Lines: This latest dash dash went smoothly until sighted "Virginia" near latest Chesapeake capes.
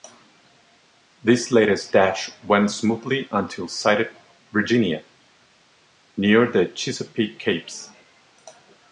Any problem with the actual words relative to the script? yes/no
yes